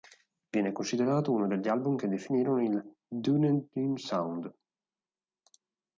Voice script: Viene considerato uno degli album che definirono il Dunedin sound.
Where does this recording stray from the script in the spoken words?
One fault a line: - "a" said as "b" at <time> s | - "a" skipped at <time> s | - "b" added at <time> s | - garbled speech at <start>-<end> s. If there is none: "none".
none